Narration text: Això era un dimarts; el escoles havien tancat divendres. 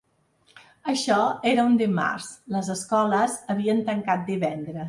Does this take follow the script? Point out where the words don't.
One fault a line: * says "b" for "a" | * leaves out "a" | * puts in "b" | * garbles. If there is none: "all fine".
* says "les" for "el"